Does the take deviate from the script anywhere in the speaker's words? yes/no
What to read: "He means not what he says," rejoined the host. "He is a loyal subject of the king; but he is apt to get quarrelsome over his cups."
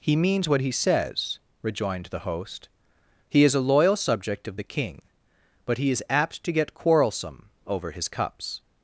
yes